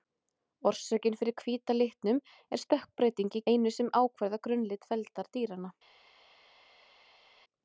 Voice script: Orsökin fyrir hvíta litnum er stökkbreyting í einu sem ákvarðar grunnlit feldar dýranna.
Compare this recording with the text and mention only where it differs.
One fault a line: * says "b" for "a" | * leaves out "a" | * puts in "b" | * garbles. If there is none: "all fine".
all fine